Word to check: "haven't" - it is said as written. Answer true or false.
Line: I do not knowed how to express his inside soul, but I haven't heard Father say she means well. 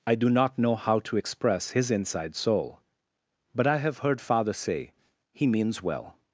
false